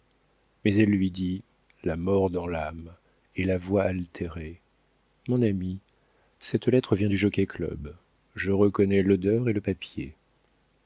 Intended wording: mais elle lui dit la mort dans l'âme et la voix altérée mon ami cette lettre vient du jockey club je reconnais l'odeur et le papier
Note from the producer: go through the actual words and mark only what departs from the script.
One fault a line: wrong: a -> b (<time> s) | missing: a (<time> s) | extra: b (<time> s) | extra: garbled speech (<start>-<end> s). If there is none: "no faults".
no faults